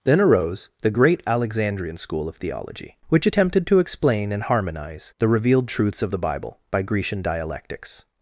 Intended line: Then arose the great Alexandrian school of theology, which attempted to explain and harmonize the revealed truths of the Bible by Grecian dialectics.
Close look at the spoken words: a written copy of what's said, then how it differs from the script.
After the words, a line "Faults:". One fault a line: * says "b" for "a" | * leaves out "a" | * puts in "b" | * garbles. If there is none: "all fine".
Then arose the great Alexandrian school of theology, which attempted to explain and harmonize the revealed truths of the Bible by Grecian dialectics.
Faults:
all fine